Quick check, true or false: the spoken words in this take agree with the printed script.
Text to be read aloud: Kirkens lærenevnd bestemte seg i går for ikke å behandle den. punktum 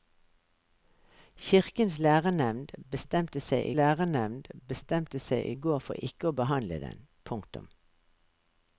false